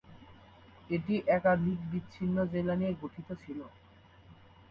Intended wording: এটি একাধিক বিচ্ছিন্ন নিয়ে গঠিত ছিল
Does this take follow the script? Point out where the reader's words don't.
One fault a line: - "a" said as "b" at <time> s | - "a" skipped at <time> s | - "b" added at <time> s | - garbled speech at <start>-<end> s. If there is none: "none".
- "জেলা" added at 2.5 s